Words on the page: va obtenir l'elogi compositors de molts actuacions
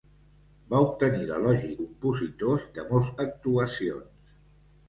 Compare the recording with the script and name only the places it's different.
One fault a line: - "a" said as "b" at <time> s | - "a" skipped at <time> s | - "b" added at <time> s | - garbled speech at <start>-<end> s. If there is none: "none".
none